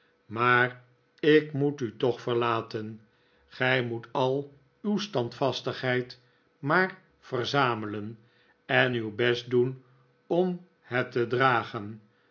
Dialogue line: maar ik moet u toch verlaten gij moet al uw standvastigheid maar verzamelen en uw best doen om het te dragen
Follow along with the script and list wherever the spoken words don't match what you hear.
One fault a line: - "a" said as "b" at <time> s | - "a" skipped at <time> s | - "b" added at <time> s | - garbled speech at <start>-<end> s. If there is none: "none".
none